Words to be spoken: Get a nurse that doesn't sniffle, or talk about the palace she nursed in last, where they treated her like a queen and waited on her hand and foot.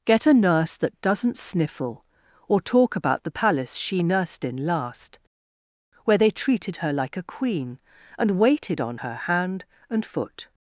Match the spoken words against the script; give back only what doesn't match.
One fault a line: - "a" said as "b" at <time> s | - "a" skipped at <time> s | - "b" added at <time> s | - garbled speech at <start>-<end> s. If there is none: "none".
none